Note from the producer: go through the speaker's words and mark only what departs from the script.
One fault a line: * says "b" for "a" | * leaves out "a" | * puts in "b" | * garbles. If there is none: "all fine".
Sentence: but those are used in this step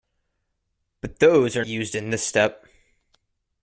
all fine